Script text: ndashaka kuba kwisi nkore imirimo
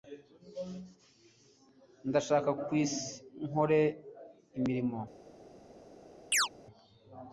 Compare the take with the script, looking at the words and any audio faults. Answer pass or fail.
fail